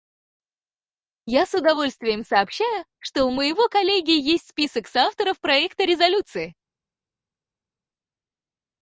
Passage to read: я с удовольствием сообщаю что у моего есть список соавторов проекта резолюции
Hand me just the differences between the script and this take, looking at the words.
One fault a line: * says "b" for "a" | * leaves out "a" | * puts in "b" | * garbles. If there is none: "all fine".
* puts in "коллеги"